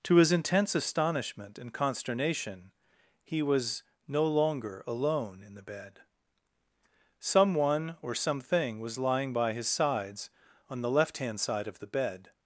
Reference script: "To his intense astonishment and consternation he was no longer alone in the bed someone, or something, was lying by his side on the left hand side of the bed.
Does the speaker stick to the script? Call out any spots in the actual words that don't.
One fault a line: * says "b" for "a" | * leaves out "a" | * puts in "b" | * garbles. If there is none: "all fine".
* says "sides" for "side"